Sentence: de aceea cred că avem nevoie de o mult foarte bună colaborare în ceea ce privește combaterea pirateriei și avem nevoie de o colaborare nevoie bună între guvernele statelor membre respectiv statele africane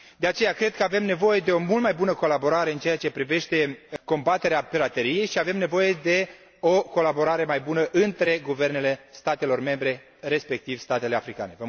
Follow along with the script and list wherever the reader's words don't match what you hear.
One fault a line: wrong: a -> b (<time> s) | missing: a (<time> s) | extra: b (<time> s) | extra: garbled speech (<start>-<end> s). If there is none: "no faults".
wrong: foarte -> mai (1.8 s)
wrong: nevoie -> mai (7.5 s)